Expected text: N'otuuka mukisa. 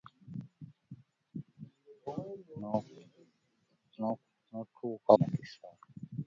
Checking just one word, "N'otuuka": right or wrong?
right